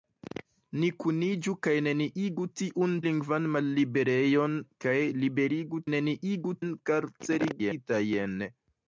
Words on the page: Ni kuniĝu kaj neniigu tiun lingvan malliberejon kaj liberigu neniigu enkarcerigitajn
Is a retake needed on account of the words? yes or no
no